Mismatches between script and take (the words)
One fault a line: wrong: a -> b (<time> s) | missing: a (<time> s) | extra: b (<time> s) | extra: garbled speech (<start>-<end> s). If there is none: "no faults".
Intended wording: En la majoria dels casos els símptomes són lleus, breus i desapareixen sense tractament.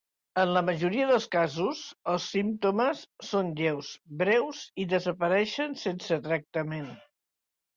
no faults